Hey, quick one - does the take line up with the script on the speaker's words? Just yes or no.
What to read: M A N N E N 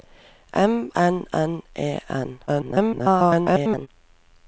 no